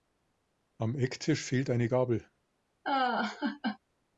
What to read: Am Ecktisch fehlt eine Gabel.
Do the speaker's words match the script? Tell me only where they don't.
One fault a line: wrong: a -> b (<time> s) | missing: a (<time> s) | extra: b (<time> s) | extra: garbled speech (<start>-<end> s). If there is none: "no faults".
no faults